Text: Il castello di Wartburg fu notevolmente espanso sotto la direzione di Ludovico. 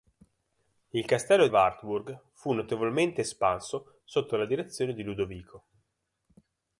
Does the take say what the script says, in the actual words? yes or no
no